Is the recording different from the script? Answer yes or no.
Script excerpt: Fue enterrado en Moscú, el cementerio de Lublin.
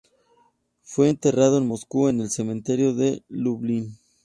yes